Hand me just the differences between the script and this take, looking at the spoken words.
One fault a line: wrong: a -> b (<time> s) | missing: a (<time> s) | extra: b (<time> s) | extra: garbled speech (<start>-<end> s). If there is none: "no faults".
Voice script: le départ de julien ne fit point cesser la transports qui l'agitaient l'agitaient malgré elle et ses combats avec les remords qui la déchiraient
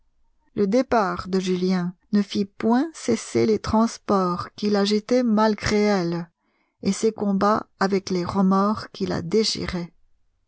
wrong: la -> les (3.4 s)
missing: l'agitaient (5.2 s)